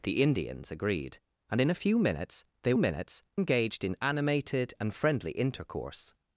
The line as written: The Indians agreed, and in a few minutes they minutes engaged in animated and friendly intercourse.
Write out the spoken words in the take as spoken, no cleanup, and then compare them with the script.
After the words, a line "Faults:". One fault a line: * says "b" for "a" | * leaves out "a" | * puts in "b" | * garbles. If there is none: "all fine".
The Indians agreed, and in a few minutes they minutes engaged in animated and friendly intercourse.
Faults:
all fine